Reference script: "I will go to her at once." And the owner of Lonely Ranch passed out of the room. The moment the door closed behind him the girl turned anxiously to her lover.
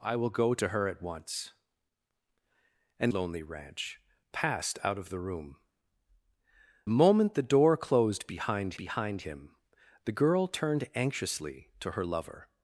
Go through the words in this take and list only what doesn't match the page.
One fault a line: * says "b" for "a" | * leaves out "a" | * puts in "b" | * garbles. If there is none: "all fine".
* leaves out "the owner of"
* leaves out "The"
* puts in "behind"